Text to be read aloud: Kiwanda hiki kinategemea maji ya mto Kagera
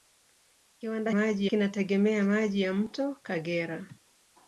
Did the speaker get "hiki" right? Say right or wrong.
wrong